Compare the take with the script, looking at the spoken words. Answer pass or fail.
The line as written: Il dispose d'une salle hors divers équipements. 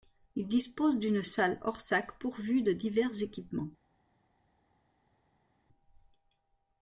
fail